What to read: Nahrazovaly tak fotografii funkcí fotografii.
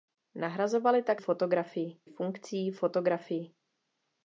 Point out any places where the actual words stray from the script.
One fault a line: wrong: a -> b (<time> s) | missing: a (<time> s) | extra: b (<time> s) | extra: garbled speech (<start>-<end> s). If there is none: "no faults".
no faults